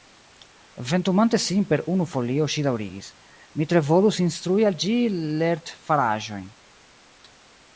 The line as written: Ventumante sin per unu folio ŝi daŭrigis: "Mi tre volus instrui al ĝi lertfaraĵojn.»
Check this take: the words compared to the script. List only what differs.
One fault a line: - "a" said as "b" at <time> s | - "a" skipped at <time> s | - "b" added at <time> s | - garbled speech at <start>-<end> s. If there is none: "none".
none